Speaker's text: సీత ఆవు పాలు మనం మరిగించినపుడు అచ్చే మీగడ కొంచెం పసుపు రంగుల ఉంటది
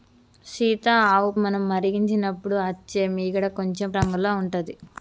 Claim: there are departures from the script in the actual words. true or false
true